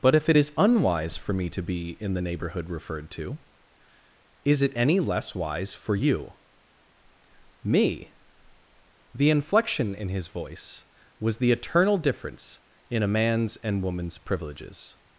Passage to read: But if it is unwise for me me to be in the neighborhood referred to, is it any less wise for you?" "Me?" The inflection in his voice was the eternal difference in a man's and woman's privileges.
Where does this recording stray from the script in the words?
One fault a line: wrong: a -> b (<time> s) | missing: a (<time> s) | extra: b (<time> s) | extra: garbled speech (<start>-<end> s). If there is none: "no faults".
missing: me (1.5 s)